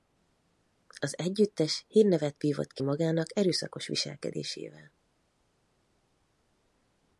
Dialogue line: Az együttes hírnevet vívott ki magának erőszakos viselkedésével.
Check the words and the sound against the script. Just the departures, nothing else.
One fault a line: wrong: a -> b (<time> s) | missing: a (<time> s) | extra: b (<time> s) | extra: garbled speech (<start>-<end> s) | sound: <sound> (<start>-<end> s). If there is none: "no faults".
no faults